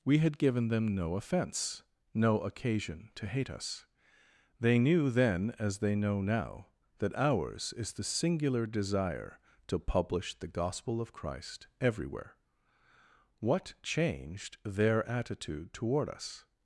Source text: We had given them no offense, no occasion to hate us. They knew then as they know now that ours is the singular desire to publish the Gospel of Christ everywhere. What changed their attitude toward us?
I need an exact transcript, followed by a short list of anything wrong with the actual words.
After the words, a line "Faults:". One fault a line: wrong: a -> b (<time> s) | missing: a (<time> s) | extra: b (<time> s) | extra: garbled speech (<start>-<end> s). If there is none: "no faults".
We had given them no offense, no occasion to hate us. They knew then as they know now that ours is the singular desire to publish the Gospel of Christ everywhere. What changed their attitude toward us?
Faults:
no faults